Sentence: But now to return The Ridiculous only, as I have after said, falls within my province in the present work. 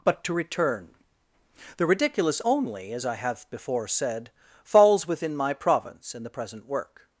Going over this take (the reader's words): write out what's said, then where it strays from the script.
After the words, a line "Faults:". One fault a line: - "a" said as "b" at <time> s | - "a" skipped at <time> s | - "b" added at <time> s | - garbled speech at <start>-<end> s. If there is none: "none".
But to return The Ridiculous only, as I have before said, falls within my province in the present work.
Faults:
- "now" skipped at 0.2 s
- "after" said as "before" at 3.5 s